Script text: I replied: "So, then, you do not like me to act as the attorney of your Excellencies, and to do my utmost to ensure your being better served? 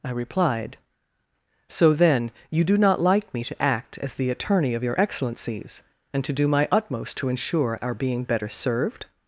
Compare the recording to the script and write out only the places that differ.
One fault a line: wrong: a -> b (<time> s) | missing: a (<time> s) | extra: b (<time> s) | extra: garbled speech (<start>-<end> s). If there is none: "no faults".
wrong: your -> our (7.8 s)